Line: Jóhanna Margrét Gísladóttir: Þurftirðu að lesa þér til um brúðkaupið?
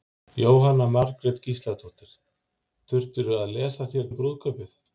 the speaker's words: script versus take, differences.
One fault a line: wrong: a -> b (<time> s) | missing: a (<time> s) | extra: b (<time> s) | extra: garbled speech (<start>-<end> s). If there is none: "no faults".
missing: til (4.1 s)